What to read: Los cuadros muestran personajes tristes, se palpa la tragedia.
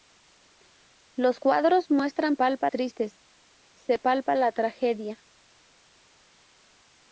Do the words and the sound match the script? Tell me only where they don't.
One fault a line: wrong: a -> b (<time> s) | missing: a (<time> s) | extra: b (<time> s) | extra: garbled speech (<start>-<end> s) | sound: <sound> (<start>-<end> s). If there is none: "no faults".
wrong: personajes -> palpa (2.3 s)